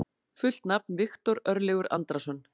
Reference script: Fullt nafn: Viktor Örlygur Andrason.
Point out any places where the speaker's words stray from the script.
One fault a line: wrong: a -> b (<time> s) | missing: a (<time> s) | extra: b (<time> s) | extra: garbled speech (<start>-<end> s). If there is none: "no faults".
no faults